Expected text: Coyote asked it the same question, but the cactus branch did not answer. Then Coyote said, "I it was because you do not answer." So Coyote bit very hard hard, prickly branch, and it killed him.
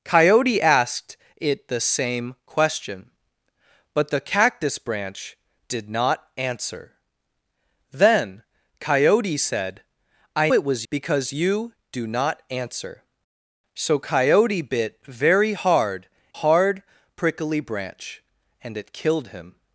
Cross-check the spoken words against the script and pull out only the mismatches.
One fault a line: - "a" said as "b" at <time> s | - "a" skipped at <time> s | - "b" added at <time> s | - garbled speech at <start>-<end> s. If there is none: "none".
none